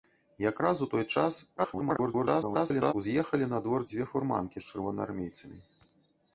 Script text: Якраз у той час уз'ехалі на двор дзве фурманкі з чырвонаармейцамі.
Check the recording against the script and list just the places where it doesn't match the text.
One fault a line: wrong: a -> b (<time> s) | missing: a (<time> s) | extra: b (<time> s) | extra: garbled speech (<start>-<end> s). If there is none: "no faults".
extra: garbled speech (1.6-2.9 s)